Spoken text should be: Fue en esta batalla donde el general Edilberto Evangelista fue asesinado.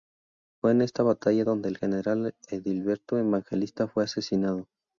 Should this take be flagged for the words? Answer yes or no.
no